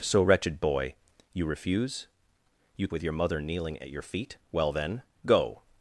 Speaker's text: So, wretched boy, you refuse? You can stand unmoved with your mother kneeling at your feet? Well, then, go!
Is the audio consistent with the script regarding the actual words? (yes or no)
no